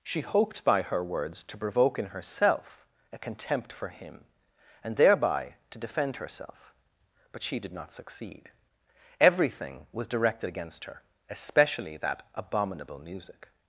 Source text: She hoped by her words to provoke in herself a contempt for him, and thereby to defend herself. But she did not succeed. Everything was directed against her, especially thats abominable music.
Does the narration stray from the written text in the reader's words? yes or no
yes